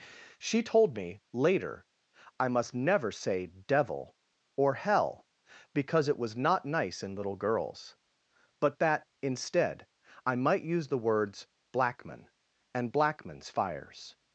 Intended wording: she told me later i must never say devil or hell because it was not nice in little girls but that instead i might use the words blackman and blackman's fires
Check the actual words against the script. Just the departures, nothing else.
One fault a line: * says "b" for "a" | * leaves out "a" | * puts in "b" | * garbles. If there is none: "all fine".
all fine